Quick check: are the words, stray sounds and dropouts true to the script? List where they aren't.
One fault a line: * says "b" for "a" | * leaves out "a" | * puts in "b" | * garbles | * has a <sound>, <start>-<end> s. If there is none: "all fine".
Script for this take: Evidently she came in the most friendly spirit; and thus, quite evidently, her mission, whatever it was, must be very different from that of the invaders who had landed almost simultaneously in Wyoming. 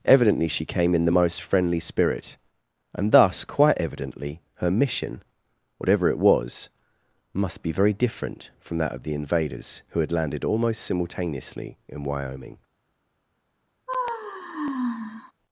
* has a sigh, 13.9-15.3 s